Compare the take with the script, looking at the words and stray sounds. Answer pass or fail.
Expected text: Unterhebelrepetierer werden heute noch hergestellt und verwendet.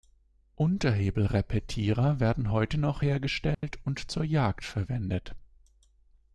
fail